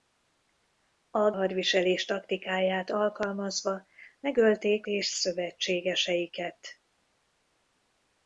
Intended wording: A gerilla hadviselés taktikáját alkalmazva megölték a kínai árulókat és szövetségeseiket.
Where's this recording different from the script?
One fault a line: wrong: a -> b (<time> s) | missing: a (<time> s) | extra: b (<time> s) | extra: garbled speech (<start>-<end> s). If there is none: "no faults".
missing: gerilla (1.3 s)
missing: a kínai árulókat (4.9 s)